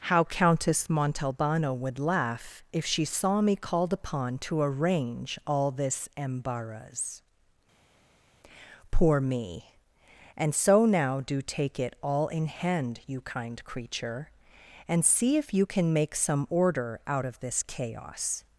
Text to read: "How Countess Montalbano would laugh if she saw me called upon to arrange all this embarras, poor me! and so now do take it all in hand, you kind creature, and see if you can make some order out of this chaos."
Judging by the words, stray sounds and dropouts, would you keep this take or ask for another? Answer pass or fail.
pass